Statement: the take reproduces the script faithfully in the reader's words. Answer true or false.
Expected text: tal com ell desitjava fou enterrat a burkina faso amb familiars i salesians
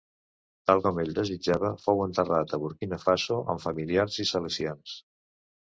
true